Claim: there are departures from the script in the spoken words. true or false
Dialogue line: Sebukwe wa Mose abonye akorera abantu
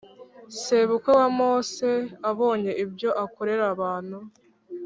true